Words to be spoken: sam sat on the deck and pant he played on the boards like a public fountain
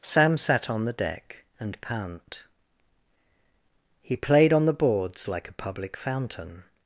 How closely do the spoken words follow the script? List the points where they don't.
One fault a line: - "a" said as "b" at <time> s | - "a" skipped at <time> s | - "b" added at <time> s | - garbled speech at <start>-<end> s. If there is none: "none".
none